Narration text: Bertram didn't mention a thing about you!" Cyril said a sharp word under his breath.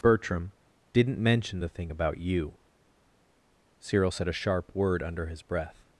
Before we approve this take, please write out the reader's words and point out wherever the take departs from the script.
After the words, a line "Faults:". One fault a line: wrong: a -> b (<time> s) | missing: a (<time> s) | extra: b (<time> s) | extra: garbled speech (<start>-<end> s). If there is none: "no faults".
Bertram didn't mention the thing about you!" Cyril said a sharp word under his breath.
Faults:
wrong: a -> the (1.6 s)